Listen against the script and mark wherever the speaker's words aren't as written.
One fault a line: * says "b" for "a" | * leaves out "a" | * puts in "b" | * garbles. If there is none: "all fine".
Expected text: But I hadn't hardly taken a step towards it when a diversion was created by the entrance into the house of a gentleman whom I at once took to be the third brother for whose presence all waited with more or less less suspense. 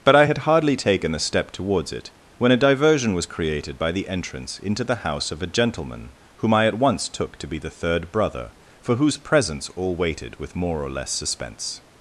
* says "had" for "hadn't"
* leaves out "less"